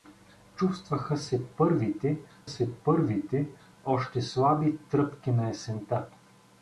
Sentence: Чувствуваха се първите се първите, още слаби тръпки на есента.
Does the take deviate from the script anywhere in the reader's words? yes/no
no